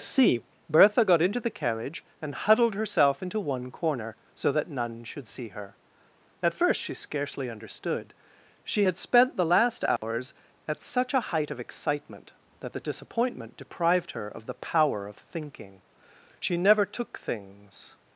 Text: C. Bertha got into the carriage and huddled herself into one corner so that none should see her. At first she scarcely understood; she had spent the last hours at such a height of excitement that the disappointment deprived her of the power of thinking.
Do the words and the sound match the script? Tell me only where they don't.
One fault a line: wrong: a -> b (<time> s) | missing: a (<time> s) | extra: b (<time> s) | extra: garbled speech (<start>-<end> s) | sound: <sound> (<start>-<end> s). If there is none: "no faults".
sound: dropout (10.0-10.0 s)
extra: She never took things (16.4 s)